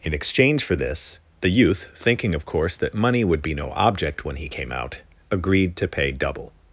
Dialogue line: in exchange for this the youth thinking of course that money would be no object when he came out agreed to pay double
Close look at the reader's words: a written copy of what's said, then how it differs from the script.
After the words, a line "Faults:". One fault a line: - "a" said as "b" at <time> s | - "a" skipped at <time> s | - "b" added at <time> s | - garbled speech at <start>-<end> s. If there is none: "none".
in exchange for this the youth thinking of course that money would be no object when he came out agreed to pay double
Faults:
none